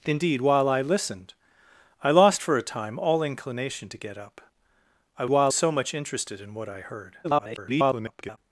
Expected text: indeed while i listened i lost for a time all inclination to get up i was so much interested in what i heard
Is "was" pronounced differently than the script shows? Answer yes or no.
yes